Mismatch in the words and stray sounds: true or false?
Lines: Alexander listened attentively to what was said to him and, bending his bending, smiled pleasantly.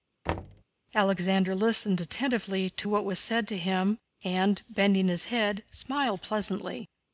true